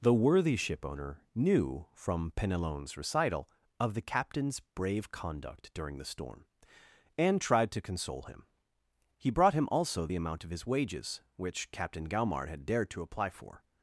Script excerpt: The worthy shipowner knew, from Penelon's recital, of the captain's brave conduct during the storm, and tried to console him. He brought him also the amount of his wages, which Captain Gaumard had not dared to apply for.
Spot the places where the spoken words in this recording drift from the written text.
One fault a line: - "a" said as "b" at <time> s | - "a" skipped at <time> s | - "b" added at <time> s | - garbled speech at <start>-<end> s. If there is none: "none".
- "not" skipped at 12.6 s